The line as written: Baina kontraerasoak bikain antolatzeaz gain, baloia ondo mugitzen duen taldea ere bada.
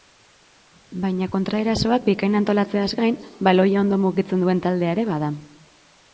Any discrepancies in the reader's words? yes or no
no